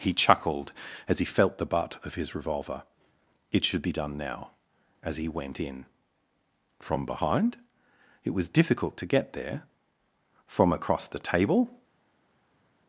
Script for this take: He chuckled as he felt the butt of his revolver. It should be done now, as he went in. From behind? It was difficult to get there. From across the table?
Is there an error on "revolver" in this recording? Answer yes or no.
no